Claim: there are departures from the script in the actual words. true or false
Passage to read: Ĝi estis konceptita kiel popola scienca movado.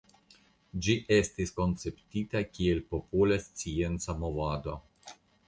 false